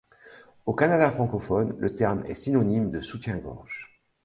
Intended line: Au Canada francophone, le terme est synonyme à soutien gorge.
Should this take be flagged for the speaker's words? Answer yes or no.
yes